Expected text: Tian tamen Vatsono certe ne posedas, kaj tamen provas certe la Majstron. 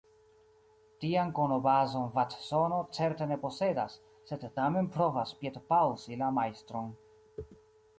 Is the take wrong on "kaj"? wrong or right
wrong